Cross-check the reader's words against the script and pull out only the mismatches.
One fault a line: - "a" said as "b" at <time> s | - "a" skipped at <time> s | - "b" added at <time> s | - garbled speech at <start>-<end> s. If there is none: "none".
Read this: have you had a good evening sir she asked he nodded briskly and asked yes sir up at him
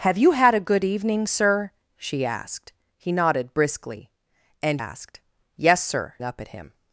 none